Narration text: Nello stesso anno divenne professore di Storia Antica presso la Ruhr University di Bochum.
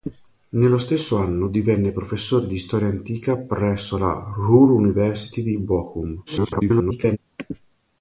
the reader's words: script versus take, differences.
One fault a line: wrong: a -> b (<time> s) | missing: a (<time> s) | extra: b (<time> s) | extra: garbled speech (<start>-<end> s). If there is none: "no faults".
extra: garbled speech (6.3-7.2 s)